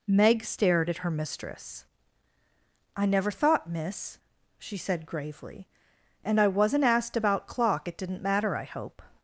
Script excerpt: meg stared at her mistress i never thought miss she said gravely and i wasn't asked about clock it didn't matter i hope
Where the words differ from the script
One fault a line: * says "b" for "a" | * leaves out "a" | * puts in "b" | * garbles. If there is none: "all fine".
all fine